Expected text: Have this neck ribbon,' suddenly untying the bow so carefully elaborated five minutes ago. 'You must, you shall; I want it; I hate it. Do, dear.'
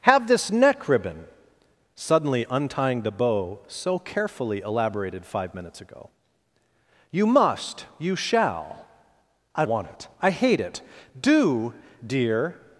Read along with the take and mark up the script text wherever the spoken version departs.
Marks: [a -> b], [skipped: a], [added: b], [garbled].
Have this neck ribbon,' suddenly untying the bow so carefully elaborated five minutes ago. 'You must, you shall; I want it; I hate it. Do, dear.'